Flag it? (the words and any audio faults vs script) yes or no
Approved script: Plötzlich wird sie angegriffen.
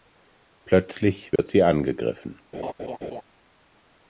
yes